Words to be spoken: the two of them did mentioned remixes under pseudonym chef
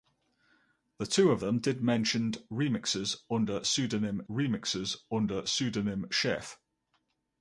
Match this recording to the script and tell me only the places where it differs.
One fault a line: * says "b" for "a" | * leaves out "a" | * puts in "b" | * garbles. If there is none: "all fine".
* puts in "remixes under pseudonym"